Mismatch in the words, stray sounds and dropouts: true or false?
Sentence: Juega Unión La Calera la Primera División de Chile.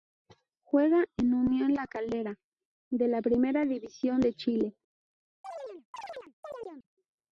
true